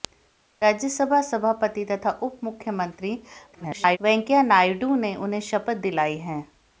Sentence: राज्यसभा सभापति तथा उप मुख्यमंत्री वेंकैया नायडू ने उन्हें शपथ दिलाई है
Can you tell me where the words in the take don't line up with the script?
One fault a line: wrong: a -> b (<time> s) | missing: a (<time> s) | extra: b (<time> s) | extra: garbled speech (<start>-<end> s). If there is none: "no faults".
extra: garbled speech (3.5-4.0 s)